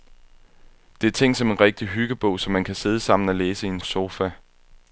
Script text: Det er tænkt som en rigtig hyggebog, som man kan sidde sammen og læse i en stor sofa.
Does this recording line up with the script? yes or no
no